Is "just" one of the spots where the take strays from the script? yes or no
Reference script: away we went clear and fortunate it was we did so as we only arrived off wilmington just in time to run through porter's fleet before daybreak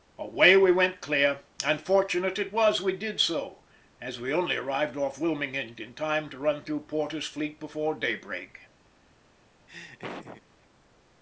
yes